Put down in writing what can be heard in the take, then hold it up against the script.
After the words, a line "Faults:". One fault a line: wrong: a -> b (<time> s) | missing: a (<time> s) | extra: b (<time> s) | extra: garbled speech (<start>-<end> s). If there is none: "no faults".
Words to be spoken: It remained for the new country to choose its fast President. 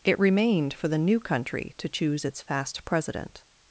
It remained for the new country to choose its fast President.
Faults:
no faults